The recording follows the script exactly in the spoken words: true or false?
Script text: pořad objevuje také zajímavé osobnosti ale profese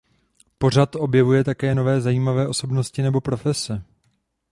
false